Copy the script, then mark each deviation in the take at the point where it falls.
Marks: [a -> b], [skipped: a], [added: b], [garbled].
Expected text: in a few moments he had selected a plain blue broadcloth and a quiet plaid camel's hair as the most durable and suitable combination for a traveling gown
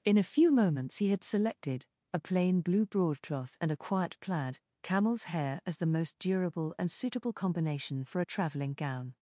in a few moments he had selected a plain blue broadcloth and a quiet plaid camel's hair as the most durable and suitable combination for a traveling gown